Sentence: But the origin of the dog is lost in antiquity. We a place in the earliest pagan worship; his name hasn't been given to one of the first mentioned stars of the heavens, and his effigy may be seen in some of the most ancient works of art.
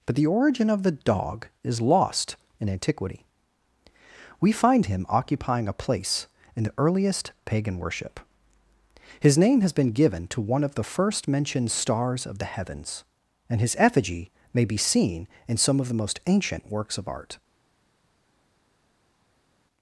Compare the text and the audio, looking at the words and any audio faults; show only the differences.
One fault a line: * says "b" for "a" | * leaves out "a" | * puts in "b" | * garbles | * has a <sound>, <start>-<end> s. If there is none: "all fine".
* puts in "find him occupying"
* says "has" for "hasn't"